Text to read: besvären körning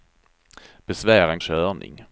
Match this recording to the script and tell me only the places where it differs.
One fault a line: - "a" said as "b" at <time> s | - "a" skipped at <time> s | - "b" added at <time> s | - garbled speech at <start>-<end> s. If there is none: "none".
none